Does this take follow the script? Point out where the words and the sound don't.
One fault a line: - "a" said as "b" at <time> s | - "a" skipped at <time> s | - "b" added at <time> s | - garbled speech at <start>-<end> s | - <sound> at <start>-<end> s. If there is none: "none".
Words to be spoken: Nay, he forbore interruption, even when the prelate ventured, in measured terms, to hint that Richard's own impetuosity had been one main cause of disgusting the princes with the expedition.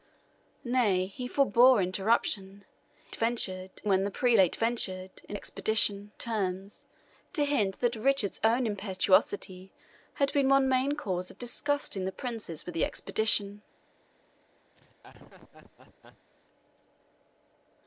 - "even" said as "ventured" at 3.1 s
- "measured" said as "expedition" at 5.3 s
- laugh at 14.7-16.3 s